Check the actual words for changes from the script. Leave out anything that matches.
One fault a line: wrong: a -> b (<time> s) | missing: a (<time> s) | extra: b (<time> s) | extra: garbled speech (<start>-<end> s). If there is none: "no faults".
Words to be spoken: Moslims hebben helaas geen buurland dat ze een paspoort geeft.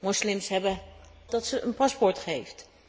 missing: helaas geen buurland (0.8 s)